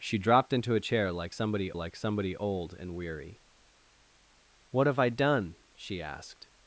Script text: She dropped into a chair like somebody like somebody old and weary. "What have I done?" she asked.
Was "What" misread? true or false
false